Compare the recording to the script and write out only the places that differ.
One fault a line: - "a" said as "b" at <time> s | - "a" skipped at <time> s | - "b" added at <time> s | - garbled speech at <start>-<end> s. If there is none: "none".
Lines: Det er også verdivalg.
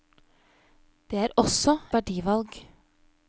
none